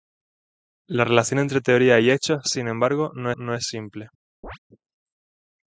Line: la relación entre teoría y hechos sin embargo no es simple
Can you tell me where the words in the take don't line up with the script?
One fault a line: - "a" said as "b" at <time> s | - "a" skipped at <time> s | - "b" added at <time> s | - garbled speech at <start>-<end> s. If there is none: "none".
- "no" added at 3.4 s